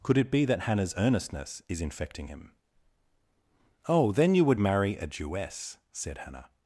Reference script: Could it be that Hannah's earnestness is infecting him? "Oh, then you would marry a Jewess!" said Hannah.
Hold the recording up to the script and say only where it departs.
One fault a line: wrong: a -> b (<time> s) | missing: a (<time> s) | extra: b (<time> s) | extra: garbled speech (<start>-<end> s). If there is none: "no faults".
no faults